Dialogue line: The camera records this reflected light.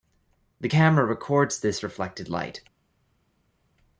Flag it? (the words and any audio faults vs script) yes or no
no